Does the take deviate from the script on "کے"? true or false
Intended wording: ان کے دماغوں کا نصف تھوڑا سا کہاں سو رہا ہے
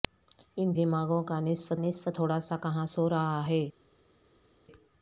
true